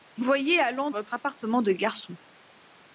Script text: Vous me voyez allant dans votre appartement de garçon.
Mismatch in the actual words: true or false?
true